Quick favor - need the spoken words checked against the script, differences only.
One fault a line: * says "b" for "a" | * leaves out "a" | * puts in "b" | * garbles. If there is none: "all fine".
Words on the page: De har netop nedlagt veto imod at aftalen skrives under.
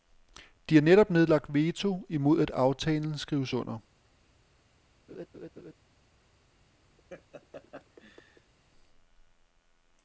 all fine